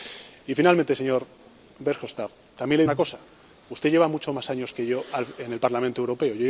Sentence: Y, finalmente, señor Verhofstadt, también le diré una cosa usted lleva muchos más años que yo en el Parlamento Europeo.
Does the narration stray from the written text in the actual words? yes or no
yes